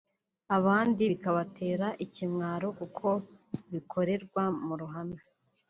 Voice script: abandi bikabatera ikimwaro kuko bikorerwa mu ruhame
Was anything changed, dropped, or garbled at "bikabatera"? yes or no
no